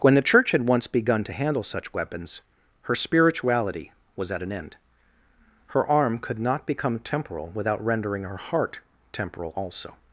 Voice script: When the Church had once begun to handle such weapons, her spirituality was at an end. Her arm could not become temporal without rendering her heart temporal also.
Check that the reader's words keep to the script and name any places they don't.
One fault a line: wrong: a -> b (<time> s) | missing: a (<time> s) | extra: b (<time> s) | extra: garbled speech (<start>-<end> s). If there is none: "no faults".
no faults